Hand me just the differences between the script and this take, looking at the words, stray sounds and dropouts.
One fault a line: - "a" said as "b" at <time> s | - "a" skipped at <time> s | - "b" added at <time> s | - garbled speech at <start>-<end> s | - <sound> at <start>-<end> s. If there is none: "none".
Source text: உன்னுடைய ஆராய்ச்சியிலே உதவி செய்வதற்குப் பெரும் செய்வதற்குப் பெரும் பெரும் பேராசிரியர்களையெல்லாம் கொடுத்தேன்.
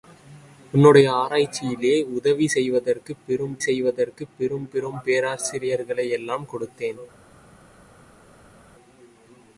none